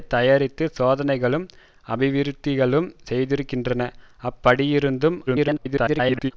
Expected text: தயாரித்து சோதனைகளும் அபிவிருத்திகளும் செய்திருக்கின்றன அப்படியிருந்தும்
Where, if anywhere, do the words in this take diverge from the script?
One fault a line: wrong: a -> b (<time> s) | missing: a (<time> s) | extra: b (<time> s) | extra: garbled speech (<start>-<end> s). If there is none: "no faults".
extra: garbled speech (5.3-6.3 s)